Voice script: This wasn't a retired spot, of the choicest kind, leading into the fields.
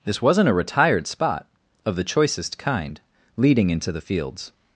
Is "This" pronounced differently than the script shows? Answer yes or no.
no